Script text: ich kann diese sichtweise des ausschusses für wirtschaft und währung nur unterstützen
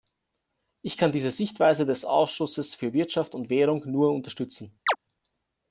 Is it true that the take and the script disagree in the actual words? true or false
false